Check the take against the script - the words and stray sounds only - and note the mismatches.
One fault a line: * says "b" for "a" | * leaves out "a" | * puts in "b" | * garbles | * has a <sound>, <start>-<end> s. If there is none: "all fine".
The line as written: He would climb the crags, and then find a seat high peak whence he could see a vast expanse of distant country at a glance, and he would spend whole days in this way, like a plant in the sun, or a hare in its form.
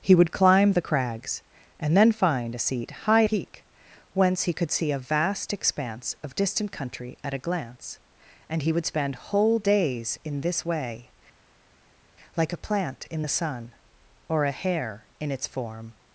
all fine